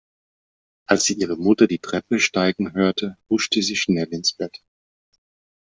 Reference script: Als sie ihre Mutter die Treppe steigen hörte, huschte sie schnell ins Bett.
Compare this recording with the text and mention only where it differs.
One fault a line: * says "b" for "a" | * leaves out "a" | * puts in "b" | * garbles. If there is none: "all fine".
all fine